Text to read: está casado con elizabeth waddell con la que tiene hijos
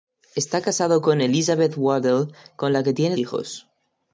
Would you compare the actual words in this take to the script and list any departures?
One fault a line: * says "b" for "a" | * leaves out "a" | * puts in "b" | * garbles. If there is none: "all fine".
all fine